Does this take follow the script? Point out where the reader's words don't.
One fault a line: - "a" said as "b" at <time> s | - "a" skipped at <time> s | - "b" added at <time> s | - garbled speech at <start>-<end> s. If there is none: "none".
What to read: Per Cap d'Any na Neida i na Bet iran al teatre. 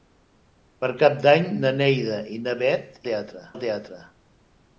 - "iran" said as "teatre" at 3.1 s